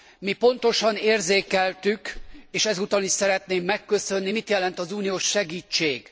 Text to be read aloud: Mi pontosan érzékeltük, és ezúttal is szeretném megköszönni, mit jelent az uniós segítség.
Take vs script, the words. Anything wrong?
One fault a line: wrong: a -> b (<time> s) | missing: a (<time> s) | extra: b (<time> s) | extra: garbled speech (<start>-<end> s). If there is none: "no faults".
no faults